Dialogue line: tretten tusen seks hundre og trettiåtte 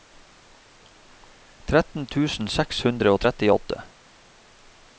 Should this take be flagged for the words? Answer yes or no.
no